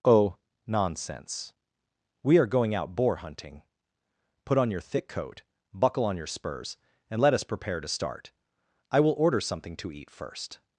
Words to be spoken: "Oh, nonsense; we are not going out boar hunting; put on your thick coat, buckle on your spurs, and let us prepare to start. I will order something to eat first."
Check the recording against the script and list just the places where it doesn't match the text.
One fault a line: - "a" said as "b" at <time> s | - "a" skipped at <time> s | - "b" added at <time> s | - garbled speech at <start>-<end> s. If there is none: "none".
- "not" skipped at 2.5 s